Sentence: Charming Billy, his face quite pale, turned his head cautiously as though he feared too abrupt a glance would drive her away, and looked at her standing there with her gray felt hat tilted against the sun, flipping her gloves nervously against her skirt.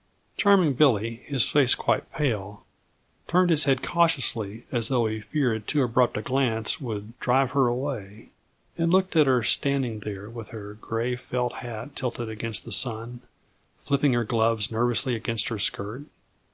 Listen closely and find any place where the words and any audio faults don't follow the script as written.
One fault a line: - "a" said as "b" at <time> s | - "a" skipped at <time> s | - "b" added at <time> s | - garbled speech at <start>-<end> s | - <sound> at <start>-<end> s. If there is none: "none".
none